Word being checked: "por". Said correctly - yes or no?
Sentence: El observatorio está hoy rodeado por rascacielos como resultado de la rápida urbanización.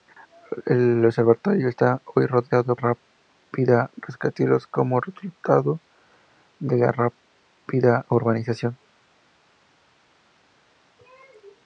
no